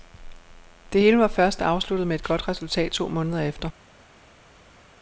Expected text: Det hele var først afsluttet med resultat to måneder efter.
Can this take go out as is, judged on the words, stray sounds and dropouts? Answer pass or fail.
fail